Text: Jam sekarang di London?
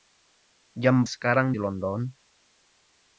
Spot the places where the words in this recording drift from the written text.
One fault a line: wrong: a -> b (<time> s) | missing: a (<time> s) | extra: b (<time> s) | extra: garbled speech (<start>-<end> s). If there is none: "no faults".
no faults